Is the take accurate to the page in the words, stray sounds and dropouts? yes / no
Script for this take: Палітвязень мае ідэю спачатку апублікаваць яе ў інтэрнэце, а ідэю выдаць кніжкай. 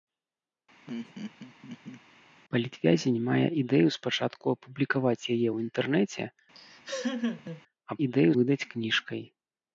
no